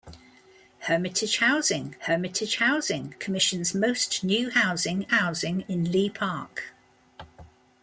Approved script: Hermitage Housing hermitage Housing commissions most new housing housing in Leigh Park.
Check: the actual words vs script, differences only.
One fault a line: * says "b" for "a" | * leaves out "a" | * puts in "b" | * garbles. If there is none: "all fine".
all fine